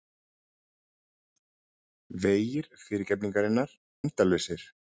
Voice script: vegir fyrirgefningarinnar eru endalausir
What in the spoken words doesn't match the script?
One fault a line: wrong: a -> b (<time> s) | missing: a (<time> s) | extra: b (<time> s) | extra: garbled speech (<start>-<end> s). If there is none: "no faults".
missing: eru (3.8 s)